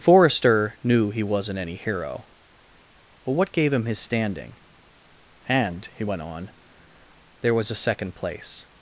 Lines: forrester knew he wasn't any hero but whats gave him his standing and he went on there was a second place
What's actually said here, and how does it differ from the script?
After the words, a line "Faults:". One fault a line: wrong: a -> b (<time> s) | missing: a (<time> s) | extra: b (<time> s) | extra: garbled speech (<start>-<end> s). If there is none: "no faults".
forrester knew he wasn't any hero but what gave him his standing and he went on there was a second place
Faults:
wrong: whats -> what (3.3 s)